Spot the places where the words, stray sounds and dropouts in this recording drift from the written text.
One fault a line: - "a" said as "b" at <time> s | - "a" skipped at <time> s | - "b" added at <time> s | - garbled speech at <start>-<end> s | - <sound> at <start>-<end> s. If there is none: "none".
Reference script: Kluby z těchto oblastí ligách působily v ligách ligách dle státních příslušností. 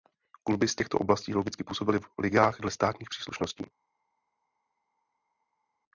- "ligách" said as "logicky" at 1.3 s
- "ligách" skipped at 2.6 s